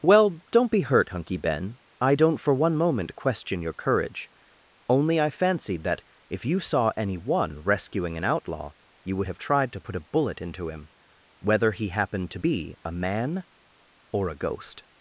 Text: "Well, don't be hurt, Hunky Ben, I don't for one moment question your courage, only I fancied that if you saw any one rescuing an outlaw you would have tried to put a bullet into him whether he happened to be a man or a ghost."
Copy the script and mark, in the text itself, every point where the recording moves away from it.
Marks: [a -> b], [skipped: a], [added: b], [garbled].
"Well, don't be hurt, Hunky Ben, I don't for one moment question your courage, only I fancied that if you saw any one rescuing an outlaw you would have tried to put a bullet into him whether he happened to be a man or a ghost."